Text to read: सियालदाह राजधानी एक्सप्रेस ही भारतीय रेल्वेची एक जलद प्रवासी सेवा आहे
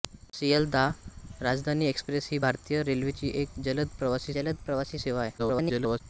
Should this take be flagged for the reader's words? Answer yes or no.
yes